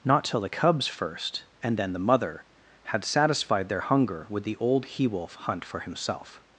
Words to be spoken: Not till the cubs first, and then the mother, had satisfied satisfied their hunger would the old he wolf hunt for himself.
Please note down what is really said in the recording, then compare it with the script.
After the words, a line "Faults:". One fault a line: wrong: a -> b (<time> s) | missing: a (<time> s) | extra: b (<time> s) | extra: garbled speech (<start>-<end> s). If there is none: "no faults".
Not till the cubs first, and then the mother, had satisfied their hunger would the old he wolf hunt for himself.
Faults:
missing: satisfied (3.7 s)